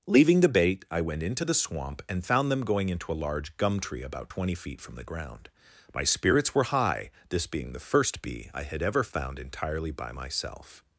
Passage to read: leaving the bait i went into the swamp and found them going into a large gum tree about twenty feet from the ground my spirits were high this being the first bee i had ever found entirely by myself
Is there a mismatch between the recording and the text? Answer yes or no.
no